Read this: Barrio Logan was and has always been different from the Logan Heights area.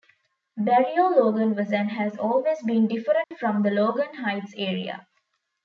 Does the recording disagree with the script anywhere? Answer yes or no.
no